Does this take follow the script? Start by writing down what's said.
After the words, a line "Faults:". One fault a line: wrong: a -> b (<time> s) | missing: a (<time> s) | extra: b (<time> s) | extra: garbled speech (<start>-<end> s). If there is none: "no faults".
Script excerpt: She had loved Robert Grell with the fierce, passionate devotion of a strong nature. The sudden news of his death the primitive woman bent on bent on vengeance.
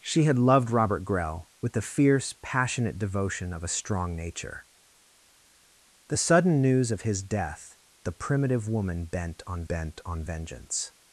She had loved Robert Grell with the fierce, passionate devotion of a strong nature. The sudden news of his death the primitive woman bent on bent on vengeance.
Faults:
no faults